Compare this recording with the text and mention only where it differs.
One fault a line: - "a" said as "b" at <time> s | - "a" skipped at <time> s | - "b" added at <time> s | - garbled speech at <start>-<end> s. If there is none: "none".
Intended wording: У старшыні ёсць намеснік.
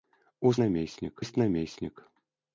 - "старшыні" said as "намеснік" at 0.6 s